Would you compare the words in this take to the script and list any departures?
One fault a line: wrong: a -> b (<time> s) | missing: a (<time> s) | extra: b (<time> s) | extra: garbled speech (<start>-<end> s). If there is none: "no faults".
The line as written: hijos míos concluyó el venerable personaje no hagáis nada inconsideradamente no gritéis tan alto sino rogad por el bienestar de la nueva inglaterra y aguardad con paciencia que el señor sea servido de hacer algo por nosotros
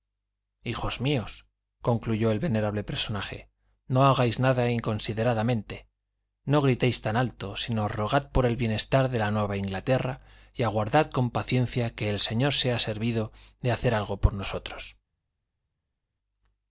no faults